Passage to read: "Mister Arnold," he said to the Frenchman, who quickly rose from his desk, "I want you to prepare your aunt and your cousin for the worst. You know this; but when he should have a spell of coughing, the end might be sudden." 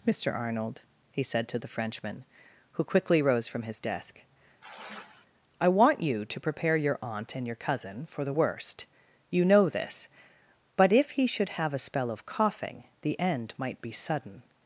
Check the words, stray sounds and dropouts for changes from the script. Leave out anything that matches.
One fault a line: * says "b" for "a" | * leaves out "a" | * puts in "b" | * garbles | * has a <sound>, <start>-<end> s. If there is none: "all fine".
* has a sigh, 4.6-5.3 s
* says "if" for "when"